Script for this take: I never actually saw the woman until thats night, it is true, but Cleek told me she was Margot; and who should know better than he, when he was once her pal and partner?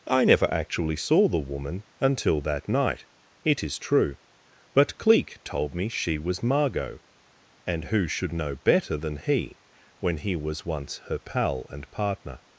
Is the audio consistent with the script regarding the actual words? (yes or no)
no